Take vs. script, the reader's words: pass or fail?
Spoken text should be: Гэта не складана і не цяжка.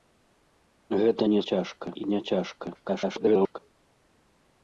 fail